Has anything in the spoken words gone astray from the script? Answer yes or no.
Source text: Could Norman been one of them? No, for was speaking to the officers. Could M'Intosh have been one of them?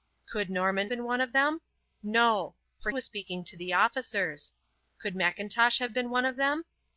no